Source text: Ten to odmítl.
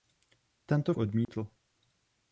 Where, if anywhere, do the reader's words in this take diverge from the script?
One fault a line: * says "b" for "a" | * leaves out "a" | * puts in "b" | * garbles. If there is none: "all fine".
all fine